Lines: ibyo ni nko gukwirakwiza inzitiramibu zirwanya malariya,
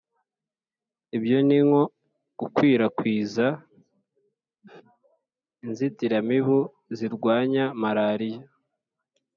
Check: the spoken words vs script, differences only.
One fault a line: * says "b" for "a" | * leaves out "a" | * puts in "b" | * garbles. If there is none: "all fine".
all fine